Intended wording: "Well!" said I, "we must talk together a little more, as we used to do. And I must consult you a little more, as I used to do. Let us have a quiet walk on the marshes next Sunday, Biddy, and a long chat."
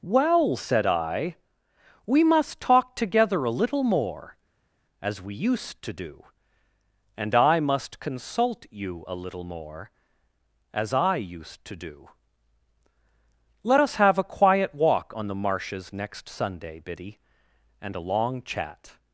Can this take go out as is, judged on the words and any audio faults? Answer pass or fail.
pass